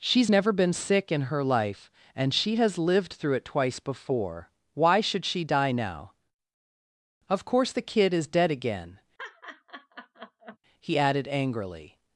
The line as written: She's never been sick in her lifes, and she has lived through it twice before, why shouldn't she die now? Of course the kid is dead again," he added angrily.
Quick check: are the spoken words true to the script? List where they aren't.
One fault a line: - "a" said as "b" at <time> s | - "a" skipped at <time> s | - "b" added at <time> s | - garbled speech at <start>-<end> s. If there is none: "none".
- "lifes" said as "life" at 1.4 s
- "shouldn't" said as "should" at 5.0 s